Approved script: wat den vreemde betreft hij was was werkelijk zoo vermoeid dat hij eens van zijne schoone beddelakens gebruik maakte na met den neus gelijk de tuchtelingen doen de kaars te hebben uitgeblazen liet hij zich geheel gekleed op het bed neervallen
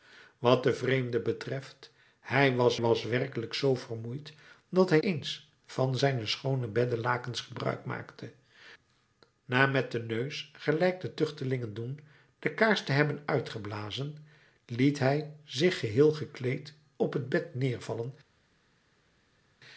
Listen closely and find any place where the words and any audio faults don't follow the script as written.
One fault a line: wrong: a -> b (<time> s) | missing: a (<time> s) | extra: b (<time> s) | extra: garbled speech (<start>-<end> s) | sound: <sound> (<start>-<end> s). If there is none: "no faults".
no faults